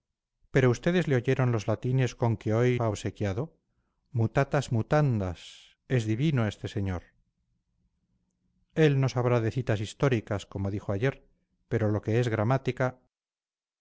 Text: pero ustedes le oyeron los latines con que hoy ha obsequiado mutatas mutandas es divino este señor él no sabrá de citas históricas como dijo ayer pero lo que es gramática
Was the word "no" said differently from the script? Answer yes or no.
no